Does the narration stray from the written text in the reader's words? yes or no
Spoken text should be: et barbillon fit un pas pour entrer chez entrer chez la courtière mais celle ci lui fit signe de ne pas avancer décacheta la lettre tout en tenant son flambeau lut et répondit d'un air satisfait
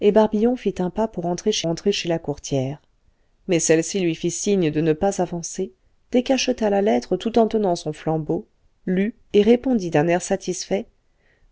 no